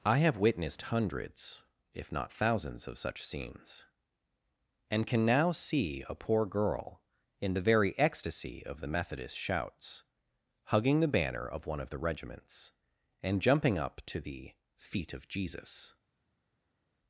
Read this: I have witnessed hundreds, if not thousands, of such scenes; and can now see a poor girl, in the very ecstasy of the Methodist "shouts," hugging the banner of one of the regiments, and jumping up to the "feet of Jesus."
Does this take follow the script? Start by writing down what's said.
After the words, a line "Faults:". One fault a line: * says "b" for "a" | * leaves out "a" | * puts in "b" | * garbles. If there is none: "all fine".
I have witnessed hundreds, if not thousands, of such scenes; and can now see a poor girl, in the very ecstasy of the Methodist "shouts," hugging the banner of one of the regiments, and jumping up to the "feet of Jesus."
Faults:
all fine